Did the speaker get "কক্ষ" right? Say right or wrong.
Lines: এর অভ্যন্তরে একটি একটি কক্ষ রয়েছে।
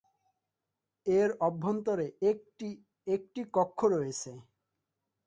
right